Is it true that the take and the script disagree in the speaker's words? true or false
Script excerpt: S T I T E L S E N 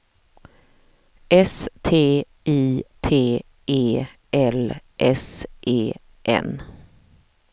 false